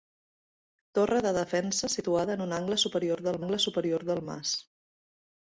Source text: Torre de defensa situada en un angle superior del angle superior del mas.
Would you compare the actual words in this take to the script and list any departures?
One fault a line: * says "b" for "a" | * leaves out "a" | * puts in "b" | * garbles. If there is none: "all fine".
all fine